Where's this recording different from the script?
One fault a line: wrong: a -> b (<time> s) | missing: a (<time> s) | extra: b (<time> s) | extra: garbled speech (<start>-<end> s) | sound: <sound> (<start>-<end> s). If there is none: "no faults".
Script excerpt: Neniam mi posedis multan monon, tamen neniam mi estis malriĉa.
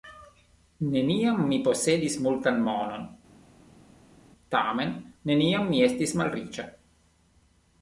no faults